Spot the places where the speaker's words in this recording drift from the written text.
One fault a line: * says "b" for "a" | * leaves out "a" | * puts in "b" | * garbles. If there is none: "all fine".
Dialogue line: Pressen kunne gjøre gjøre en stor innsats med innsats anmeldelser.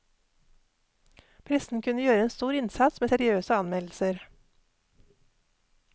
* leaves out "gjøre"
* says "seriøse" for "innsats"